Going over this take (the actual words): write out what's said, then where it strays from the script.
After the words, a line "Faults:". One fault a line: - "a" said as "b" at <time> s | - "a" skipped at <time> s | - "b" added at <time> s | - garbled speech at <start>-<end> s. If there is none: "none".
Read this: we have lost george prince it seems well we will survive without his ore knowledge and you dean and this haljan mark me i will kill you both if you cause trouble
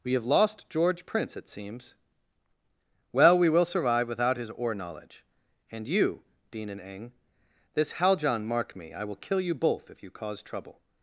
we have lost george prince it seems well we will survive without his ore knowledge and you dean and eng this haljan mark me i will kill you both if you cause trouble
Faults:
- "eng" added at 6.8 s